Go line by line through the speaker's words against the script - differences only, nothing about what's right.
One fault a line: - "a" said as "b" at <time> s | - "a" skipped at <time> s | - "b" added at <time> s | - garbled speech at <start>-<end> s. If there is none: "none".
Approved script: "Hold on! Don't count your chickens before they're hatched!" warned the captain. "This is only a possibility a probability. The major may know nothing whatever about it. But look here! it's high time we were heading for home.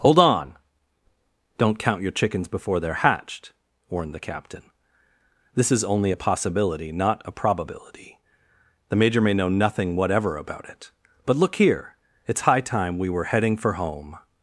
- "not" added at 6.9 s